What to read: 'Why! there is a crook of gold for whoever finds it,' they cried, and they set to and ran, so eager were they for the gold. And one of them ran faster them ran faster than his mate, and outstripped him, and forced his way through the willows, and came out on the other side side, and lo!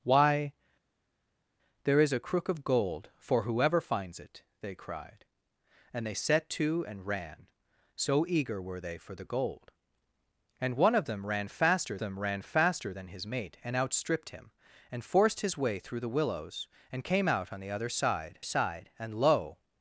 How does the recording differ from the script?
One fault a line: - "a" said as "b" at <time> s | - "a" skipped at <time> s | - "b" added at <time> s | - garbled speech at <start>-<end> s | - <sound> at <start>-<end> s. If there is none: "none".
none